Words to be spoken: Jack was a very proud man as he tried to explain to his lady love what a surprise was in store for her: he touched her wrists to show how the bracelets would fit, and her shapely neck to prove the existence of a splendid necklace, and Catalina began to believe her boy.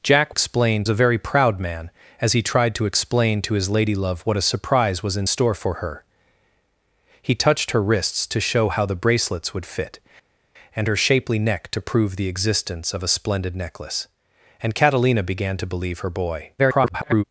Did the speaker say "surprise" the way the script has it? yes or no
yes